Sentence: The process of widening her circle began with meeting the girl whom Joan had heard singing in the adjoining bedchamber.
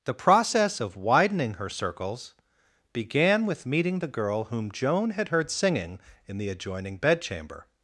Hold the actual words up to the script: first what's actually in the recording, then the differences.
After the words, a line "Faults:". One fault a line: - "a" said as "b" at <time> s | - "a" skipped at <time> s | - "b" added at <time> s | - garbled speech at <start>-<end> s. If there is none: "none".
The process of widening her circles began with meeting the girl whom Joan had heard singing in the adjoining bedchamber.
Faults:
- "circle" said as "circles" at 1.7 s